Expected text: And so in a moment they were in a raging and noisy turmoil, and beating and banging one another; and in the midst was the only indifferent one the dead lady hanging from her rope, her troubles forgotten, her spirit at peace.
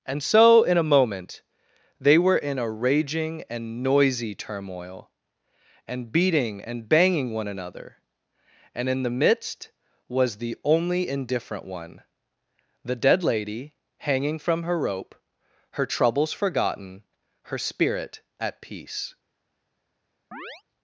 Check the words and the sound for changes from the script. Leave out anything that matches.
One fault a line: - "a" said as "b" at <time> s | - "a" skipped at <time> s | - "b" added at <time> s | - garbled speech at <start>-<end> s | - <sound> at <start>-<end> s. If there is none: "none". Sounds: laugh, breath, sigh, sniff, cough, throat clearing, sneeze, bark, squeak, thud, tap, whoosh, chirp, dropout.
- chirp at 20.3-20.6 s